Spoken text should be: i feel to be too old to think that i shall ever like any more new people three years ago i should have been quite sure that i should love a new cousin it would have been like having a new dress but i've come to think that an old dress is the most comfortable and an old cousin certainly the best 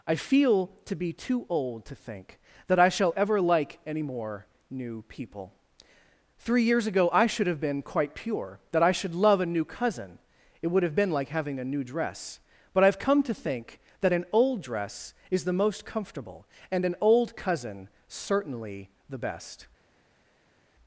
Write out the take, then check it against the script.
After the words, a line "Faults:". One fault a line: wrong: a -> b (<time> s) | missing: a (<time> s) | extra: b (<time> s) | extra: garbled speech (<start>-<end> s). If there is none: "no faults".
i feel to be too old to think that i shall ever like any more new people three years ago i should have been quite pure that i should love a new cousin it would have been like having a new dress but i've come to think that an old dress is the most comfortable and an old cousin certainly the best
Faults:
wrong: sure -> pure (8.2 s)